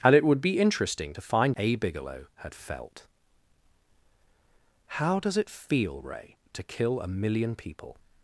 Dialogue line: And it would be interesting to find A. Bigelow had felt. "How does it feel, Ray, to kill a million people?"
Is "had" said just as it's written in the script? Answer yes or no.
yes